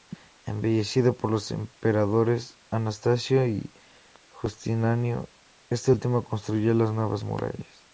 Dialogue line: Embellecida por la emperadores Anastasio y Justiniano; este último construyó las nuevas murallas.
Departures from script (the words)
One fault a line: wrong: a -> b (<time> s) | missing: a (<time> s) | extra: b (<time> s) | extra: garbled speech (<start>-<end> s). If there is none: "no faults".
wrong: la -> los (1.3 s)